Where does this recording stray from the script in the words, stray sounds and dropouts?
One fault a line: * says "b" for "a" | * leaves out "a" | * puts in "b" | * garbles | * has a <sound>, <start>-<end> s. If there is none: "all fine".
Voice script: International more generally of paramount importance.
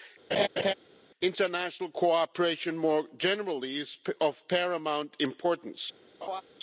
* has a laugh, 0.3-0.7 s
* puts in "cooperation"
* puts in "is"
* has a laugh, 6.2-6.4 s